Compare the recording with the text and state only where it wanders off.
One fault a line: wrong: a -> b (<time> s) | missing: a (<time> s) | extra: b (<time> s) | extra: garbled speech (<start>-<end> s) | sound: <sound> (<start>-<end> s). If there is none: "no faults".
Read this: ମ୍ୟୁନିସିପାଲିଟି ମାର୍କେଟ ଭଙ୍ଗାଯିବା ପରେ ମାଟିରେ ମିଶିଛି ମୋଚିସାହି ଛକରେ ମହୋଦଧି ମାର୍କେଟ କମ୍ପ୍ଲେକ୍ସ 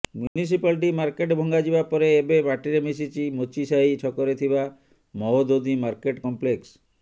sound: dropout (0.3-0.4 s)
extra: ଏବେ (2.1 s)
extra: ଥିବା (4.4 s)